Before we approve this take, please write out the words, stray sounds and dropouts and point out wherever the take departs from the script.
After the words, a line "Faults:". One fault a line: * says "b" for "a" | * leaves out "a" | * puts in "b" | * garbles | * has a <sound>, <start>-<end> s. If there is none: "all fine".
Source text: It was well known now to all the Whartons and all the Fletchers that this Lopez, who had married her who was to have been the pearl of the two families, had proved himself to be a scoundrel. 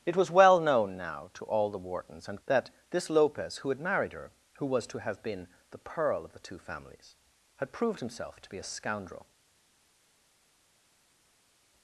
It was well known now to all the Whartons and that this Lopez, who had married her who was to have been the pearl of the two families, had proved himself to be a scoundrel.
Faults:
* leaves out "all the Fletchers"